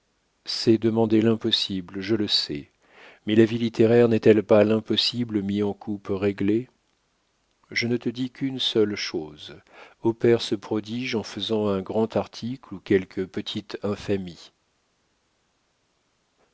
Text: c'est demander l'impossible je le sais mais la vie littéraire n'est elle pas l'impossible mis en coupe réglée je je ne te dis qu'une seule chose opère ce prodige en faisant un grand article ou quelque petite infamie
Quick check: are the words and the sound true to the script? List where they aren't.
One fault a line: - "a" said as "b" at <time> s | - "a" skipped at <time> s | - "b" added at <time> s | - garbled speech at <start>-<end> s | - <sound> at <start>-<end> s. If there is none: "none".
- "je" skipped at 7.9 s